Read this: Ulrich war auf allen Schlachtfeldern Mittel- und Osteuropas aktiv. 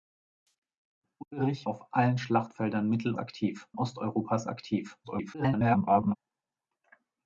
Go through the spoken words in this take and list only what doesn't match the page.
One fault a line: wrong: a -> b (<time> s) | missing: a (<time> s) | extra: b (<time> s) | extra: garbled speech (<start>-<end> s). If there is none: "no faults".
missing: war (1.7 s)
wrong: und -> aktiv (3.2 s)
extra: garbled speech (5.0-6.2 s)